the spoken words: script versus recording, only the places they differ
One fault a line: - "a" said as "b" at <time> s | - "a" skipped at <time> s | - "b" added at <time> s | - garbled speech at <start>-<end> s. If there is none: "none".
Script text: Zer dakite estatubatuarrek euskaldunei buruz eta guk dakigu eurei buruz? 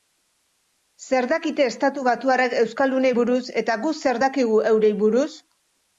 - "zer" added at 4.0 s